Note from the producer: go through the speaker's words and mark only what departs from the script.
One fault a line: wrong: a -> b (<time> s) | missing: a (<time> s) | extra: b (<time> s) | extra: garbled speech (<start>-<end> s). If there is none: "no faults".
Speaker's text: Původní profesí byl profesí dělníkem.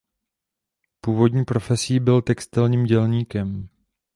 wrong: profesí -> textilním (2.2 s)